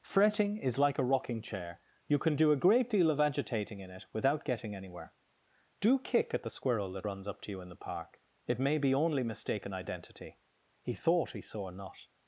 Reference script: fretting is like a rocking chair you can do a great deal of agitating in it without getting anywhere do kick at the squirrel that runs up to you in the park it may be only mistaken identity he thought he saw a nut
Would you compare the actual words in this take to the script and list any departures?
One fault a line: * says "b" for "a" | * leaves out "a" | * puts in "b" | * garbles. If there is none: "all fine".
all fine